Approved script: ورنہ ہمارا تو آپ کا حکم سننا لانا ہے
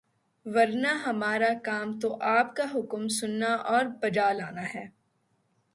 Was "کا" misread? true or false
false